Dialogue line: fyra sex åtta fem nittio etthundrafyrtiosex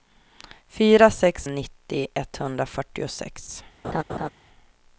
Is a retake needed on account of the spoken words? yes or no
yes